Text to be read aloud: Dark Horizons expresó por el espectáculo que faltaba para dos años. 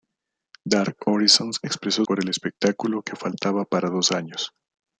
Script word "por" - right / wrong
right